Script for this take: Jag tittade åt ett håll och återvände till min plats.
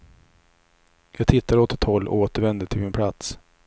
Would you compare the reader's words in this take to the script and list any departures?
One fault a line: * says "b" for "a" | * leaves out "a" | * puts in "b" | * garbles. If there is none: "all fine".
all fine